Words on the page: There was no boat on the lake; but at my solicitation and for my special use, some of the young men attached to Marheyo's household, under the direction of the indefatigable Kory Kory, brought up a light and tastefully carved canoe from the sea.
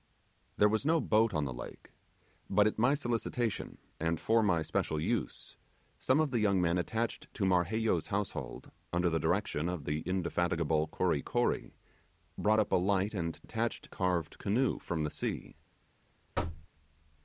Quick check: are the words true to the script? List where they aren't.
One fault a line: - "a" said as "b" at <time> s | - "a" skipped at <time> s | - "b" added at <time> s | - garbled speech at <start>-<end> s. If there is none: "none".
- "tastefully" said as "attached" at 13.4 s